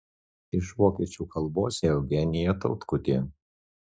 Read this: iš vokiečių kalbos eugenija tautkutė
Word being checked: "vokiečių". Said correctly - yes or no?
yes